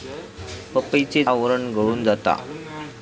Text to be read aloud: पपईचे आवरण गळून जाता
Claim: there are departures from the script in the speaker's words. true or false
false